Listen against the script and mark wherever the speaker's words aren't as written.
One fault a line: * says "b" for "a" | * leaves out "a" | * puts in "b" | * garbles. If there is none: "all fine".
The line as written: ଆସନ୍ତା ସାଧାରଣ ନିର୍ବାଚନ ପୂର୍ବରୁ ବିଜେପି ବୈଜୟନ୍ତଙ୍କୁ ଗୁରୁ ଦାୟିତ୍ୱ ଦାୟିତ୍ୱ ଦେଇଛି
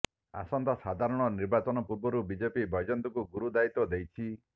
* leaves out "ଦାୟିତ୍ୱ"